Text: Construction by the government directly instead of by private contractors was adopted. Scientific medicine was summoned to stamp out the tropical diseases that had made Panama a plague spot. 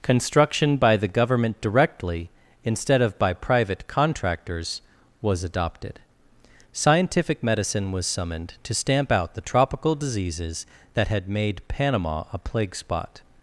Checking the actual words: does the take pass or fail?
pass